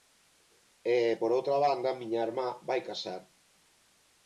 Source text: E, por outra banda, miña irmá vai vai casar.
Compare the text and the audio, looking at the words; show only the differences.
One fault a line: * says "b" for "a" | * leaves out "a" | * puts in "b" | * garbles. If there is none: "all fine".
* leaves out "vai"